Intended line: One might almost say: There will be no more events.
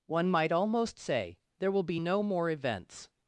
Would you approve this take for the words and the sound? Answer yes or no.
yes